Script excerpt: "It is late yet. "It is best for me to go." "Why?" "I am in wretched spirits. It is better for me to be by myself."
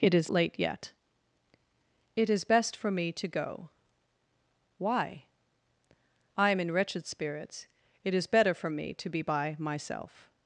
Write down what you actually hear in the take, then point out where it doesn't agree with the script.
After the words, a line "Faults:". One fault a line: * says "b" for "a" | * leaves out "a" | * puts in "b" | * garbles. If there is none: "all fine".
"It is late yet. "It is best for me to go." "Why?" "I am in wretched spirits. It is better for me to be by myself."
Faults:
all fine